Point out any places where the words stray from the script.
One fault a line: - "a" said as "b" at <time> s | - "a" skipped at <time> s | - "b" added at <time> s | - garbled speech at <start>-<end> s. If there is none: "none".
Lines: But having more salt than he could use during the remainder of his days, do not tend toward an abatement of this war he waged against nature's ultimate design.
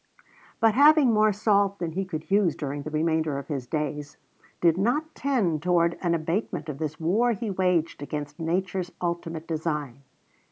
- "do" said as "did" at 4.6 s